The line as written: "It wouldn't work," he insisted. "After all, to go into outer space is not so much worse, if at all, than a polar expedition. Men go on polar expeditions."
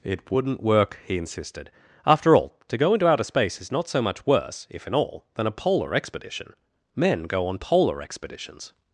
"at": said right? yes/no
no